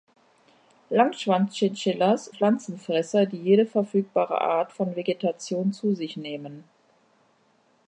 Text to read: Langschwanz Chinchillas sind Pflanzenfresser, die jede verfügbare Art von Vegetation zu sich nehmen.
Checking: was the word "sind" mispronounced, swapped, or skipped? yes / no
yes